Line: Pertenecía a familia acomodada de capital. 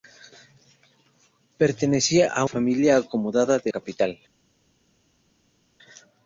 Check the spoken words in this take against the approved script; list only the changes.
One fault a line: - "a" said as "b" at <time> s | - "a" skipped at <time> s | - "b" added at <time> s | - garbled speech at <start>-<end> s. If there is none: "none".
none